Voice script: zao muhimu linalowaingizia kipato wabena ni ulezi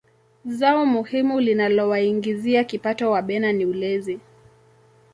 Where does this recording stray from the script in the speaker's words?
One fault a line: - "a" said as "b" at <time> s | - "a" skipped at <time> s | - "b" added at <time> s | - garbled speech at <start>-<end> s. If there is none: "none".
none